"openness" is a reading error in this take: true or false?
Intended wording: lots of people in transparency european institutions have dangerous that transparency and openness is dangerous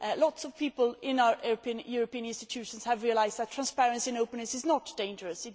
false